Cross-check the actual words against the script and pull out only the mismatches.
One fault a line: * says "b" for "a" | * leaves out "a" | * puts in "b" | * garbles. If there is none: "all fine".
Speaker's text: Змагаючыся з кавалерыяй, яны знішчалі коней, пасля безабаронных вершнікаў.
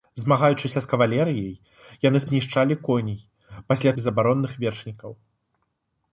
all fine